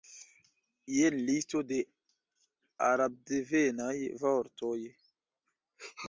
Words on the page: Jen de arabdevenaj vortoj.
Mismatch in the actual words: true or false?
true